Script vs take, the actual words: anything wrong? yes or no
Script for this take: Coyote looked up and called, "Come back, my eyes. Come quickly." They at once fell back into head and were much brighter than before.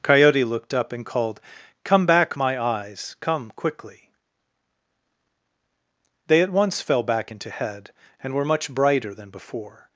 no